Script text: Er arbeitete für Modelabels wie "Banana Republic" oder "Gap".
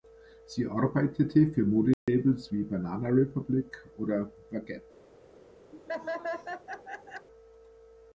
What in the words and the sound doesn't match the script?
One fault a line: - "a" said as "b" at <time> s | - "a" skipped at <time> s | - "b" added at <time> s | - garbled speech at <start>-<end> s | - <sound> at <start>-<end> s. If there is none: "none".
- "Er" said as "Sie" at 0.5 s
- dropout at 1.9-2.1 s
- "The" added at 4.5 s
- laugh at 5.7-7.3 s